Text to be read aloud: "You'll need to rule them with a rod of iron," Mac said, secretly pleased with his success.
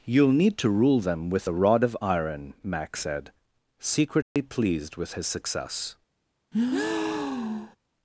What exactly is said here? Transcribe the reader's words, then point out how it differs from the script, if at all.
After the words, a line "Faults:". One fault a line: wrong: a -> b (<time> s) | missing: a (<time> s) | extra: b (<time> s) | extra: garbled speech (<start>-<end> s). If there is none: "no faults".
"You'll need to rule them with a rod of iron," Mac said, secretly pleased with his success.
Faults:
no faults